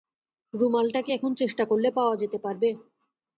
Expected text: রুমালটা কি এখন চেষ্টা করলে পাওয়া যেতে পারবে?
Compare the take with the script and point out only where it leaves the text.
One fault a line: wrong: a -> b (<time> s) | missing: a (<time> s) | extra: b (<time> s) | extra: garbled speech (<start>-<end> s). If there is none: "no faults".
no faults